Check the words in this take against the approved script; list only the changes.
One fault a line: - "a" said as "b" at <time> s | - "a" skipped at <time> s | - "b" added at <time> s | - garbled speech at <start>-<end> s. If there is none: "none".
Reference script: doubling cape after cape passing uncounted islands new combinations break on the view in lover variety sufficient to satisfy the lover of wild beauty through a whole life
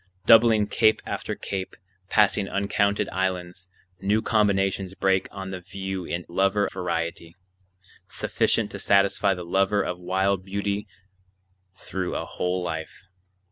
none